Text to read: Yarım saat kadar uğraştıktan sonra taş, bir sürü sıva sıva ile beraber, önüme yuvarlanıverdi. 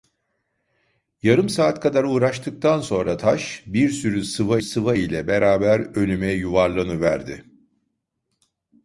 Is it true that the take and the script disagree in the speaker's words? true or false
false